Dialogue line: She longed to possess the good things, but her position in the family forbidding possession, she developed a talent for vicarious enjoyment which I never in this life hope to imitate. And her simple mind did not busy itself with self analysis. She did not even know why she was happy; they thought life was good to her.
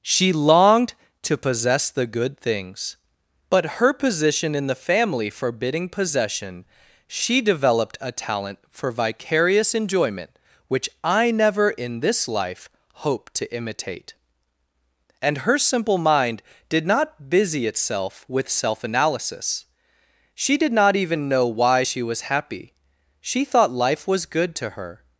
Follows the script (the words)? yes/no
no